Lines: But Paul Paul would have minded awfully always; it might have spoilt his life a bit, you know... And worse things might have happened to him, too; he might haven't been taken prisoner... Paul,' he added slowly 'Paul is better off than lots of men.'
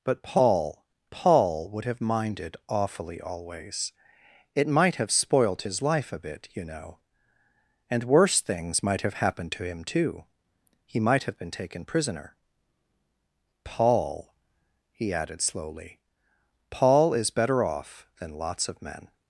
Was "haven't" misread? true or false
true